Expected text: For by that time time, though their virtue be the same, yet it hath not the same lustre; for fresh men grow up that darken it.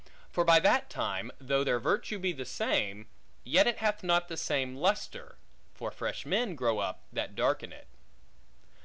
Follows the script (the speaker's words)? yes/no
no